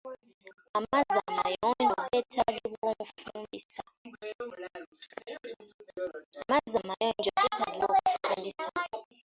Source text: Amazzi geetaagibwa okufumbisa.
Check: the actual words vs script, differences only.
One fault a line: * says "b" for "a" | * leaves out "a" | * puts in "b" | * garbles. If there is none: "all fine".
* puts in "amayonjo"